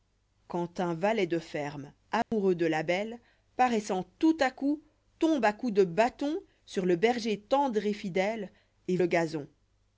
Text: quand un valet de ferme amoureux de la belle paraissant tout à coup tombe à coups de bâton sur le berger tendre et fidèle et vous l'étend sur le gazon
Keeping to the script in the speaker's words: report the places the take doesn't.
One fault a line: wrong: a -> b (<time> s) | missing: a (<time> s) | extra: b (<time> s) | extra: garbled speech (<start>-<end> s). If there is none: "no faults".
missing: vous l'étend sur (9.0 s)